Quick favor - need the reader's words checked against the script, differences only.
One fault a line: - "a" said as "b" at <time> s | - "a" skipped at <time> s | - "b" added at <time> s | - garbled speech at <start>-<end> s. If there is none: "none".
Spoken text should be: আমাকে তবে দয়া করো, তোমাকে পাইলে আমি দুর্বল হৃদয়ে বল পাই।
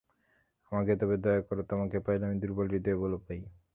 none